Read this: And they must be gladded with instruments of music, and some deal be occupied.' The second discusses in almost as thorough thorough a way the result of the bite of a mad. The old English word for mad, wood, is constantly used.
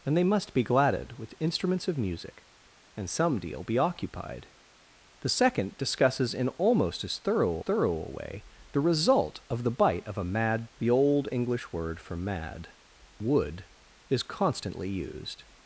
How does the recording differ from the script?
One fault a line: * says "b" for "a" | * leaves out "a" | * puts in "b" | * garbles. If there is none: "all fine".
all fine